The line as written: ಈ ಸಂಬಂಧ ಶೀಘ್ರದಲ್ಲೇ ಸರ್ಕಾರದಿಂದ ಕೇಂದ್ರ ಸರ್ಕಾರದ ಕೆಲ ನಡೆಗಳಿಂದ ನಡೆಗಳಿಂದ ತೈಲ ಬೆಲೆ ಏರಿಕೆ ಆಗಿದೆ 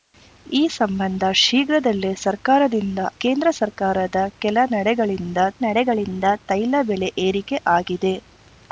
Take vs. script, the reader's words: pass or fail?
pass